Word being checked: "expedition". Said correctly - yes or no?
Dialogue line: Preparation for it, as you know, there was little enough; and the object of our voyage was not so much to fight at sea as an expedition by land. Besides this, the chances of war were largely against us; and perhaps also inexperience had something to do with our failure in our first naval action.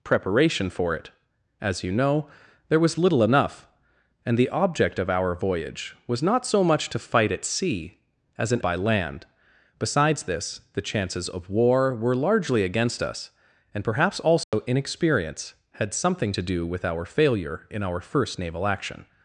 no